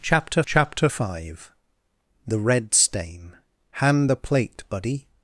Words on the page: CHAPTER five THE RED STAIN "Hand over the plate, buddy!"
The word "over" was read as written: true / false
false